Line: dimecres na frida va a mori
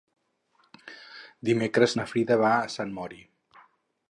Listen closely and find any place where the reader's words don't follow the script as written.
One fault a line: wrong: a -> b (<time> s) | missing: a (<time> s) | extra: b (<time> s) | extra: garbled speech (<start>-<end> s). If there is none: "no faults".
extra: sant (2.8 s)